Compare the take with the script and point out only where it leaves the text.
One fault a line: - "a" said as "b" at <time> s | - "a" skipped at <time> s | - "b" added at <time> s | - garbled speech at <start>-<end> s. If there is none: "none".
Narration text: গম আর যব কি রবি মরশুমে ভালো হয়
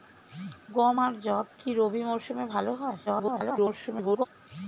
- garbled speech at 3.1-4.3 s